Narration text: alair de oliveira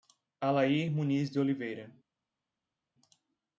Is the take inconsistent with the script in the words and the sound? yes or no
yes